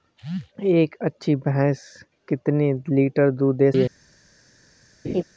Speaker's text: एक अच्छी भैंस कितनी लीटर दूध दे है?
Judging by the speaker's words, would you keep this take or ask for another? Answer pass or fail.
pass